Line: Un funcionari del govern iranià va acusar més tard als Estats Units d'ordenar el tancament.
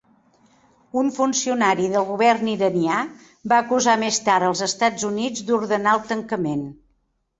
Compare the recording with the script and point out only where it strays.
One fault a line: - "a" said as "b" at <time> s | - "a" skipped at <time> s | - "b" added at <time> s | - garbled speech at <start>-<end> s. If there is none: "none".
none